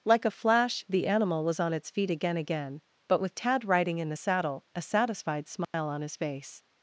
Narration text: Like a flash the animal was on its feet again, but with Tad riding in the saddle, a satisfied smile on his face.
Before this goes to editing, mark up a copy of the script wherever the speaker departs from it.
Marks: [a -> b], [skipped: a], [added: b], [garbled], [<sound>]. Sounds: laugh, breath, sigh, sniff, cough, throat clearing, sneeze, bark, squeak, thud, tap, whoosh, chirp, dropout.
Like a flash the animal was on its feet again, [added: again] but with Tad riding in the saddle, a satisfied smile [dropout] on his face.